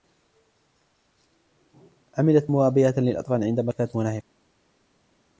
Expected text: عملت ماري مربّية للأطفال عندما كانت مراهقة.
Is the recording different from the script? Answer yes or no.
yes